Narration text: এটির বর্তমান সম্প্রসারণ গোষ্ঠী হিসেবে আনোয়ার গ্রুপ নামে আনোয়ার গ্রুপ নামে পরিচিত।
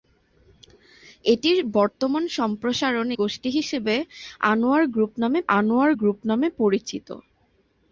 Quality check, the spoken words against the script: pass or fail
pass